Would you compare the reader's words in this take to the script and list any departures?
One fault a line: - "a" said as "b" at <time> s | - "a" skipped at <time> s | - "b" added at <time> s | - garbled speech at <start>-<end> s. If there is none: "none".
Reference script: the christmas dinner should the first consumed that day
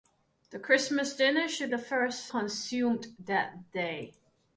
none